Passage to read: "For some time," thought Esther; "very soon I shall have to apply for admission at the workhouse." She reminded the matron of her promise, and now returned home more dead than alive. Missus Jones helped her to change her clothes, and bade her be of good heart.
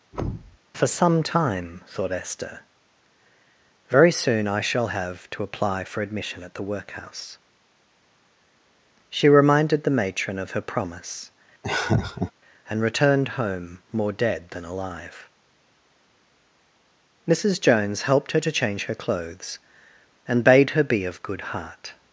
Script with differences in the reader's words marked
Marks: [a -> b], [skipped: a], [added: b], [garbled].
"For some time," thought Esther; "very soon I shall have to apply for admission at the workhouse." She reminded the matron of her promise, and [skipped: now] returned home more dead than alive. Missus Jones helped her to change her clothes, and bade her be of good heart.